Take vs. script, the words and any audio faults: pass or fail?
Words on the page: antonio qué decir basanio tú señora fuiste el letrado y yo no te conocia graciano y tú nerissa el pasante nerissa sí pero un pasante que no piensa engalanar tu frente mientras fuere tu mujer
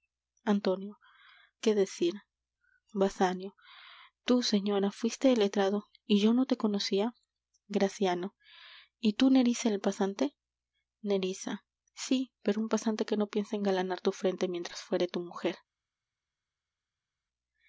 pass